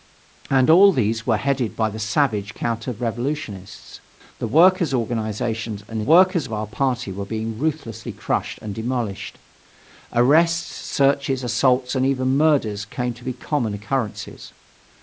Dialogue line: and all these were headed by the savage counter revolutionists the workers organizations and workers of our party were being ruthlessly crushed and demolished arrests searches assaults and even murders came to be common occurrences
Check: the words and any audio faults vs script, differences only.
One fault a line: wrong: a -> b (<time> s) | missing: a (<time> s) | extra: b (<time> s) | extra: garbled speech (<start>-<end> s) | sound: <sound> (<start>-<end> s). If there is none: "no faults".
no faults